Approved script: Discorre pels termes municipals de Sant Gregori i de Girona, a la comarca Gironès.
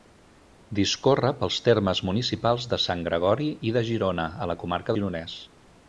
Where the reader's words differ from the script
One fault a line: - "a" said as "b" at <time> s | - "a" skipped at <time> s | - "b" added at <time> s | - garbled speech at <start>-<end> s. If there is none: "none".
none